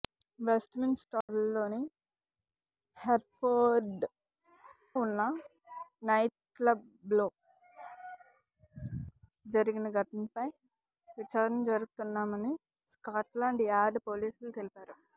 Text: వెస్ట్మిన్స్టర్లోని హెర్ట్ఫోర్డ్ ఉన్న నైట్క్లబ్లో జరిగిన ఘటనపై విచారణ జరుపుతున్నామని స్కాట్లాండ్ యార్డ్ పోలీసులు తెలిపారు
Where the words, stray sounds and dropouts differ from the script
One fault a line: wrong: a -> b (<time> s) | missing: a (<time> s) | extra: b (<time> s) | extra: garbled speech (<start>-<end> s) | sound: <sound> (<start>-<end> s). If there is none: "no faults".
sound: dropout (1.2-1.3 s)